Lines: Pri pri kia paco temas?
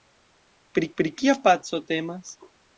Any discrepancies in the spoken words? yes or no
no